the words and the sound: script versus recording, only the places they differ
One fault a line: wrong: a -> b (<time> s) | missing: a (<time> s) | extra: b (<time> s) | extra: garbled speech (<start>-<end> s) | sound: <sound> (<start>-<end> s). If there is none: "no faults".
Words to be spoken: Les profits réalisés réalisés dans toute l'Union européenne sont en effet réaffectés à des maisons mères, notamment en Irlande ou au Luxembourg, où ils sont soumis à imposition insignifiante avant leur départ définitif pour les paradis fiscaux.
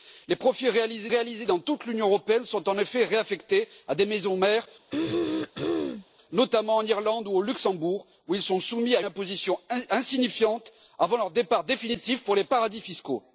sound: throat clearing (4.9-6.1 s)